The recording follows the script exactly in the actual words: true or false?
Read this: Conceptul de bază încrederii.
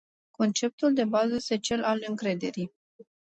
false